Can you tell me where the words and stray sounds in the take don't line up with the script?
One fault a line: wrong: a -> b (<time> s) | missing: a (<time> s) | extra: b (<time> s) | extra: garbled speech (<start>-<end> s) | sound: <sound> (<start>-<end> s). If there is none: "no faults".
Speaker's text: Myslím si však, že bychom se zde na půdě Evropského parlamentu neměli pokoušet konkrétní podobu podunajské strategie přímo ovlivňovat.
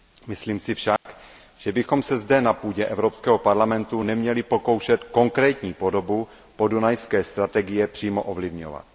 sound: dropout (1.0-1.1 s)